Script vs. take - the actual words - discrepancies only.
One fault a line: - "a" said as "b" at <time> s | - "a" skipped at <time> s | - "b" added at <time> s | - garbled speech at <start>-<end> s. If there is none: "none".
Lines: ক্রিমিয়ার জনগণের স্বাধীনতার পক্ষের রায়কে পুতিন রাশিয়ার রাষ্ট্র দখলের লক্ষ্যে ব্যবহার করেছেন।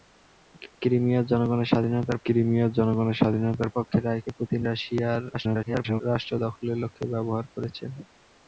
- "ক্রিমিয়ার জনগণের স্বাধীনতার" added at 2.2 s
- garbled speech at 5.3-6.0 s